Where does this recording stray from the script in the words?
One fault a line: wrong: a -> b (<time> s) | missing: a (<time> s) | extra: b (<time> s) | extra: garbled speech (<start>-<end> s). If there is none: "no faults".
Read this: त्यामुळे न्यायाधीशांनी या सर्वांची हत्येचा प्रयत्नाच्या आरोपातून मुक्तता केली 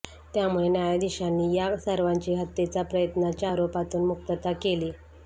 no faults